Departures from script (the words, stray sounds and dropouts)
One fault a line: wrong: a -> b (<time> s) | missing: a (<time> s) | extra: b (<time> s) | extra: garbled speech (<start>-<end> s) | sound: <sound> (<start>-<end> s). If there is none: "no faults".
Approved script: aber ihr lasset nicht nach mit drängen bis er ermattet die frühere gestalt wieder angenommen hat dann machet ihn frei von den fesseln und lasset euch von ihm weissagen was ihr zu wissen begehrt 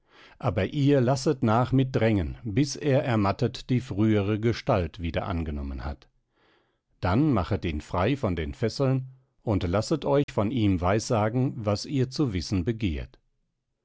missing: nicht (1.4 s)
sound: dropout (10.2-10.3 s)